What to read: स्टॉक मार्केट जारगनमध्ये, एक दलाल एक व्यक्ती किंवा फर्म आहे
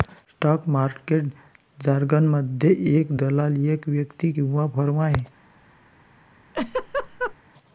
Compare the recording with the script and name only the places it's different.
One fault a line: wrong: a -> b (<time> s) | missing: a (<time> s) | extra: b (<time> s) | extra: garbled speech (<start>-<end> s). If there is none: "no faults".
no faults